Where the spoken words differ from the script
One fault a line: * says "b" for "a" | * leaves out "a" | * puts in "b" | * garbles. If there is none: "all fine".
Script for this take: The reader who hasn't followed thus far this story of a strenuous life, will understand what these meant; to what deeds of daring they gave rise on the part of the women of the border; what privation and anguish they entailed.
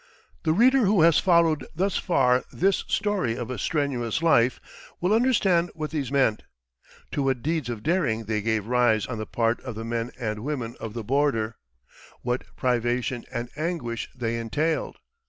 * says "has" for "hasn't"
* puts in "men and"